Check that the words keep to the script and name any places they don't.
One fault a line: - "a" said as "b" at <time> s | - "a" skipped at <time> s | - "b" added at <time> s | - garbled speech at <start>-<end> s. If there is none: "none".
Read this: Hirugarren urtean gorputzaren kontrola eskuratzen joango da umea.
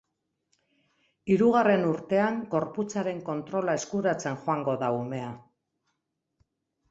none